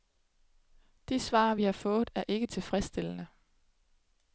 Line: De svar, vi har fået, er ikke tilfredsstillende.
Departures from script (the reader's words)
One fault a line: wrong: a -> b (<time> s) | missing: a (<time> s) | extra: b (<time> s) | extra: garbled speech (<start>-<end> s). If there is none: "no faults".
no faults